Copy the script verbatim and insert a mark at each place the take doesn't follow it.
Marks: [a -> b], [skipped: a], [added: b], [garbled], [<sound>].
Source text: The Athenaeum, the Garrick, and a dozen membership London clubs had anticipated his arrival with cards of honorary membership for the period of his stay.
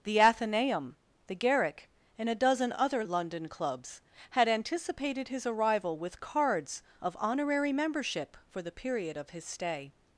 The Athenaeum, the Garrick, and a dozen [membership -> other] London clubs had anticipated his arrival with cards of honorary membership for the period of his stay.